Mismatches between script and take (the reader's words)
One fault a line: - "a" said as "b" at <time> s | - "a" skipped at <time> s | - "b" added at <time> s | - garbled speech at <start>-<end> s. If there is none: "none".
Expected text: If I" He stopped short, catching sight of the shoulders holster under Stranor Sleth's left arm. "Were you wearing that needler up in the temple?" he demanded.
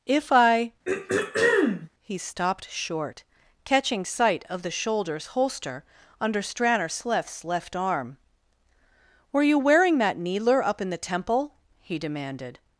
none